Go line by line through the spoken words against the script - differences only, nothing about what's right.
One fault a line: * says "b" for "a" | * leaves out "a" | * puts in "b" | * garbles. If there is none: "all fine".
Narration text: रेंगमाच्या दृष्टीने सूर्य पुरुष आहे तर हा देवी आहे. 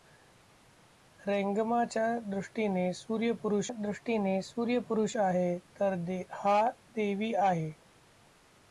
* puts in "दृष्टीने सूर्य पुरुष"